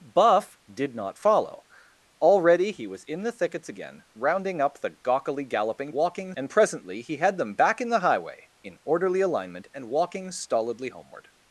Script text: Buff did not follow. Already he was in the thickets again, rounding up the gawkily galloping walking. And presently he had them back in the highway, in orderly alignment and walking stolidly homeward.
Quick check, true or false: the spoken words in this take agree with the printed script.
true